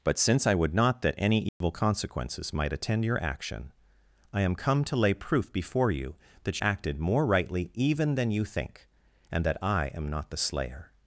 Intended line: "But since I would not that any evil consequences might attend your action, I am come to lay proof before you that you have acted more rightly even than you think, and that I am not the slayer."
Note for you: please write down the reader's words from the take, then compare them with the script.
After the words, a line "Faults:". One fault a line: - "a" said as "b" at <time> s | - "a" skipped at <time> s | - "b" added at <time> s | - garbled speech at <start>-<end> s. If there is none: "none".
"But since I would not that any evil consequences might attend your action, I am come to lay proof before you that acted more rightly even than you think, and that I am not the slayer."
Faults:
- "you have" skipped at 6.6 s